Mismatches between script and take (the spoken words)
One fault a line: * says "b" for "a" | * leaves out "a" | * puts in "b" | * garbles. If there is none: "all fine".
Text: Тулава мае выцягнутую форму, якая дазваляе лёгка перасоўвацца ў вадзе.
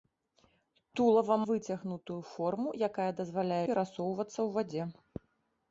* leaves out "мае"
* leaves out "лёгка"